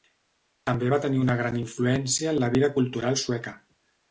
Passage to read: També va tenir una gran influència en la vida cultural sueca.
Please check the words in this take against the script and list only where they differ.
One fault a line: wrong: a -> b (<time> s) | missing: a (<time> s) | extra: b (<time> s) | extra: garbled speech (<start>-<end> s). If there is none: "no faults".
no faults